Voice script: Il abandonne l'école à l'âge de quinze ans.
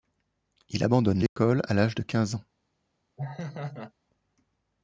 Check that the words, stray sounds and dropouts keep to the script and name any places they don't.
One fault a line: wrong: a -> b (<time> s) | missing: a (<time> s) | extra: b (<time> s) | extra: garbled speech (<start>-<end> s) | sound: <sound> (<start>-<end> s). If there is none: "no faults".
sound: dropout (1.3-1.4 s)
sound: laugh (3.2-3.9 s)